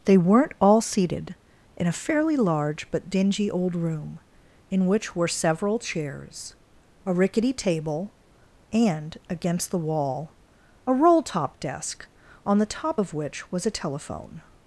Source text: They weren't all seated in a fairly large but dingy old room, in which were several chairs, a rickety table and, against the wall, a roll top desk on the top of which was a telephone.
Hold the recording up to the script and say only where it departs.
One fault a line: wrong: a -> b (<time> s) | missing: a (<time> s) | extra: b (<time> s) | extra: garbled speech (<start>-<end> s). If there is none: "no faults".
no faults